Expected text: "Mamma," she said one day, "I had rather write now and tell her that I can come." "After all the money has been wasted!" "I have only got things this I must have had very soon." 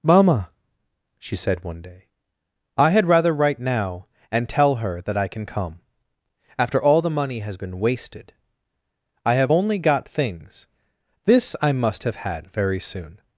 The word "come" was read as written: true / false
true